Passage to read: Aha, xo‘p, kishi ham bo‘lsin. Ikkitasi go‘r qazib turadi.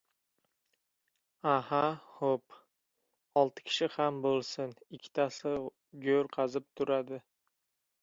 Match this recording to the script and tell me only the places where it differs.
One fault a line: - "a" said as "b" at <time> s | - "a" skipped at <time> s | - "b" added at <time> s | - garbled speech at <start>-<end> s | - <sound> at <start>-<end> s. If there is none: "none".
- "olti" added at 3.4 s